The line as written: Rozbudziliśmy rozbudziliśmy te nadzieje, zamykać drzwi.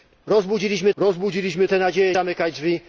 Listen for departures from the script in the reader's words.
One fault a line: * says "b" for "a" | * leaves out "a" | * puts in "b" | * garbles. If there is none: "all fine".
all fine